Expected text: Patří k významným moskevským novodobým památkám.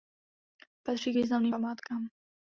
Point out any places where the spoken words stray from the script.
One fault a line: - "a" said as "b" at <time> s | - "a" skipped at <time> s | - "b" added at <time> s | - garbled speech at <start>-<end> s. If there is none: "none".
- "moskevským novodobým" skipped at 1.5 s